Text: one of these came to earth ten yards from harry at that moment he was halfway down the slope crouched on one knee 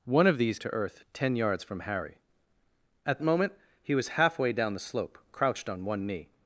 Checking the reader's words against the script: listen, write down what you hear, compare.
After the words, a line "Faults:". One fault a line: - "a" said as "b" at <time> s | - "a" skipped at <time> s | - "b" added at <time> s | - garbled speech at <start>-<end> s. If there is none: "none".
one of these to earth ten yards from harry at moment he was halfway down the slope crouched on one knee
Faults:
- "came" skipped at 0.6 s
- "that" skipped at 3.2 s